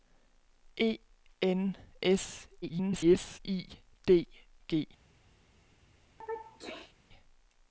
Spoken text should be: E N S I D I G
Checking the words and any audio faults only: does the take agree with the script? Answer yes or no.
no